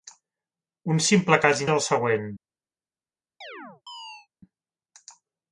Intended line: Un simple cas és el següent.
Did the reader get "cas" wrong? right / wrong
right